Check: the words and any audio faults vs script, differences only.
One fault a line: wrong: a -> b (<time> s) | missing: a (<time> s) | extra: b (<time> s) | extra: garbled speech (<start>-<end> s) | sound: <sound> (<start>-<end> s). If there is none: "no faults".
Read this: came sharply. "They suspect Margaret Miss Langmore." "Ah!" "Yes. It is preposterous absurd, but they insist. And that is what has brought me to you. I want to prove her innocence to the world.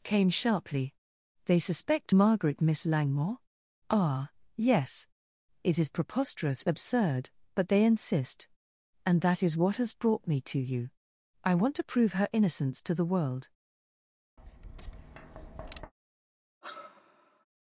sound: tap (14.4-15.9 s)
sound: sigh (16.6-17.5 s)